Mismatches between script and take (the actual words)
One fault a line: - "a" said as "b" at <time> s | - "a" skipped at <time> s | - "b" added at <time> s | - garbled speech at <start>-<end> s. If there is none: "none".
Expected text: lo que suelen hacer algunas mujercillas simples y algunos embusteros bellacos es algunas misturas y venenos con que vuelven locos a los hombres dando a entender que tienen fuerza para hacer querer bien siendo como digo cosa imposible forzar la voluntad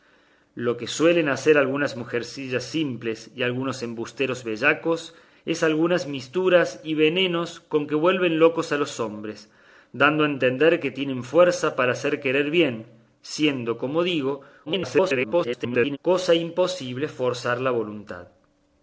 - garbled speech at 14.7-16.0 s